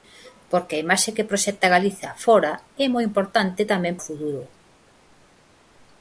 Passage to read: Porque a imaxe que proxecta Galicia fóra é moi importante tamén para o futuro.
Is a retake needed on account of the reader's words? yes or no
yes